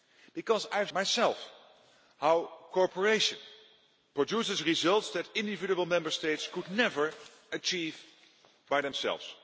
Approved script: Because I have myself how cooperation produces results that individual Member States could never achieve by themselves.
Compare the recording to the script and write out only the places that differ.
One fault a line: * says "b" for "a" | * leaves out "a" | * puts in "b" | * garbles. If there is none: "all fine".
all fine